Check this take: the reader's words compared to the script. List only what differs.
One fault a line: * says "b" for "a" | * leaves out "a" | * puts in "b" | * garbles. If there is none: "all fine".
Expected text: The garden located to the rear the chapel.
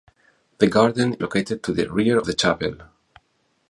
all fine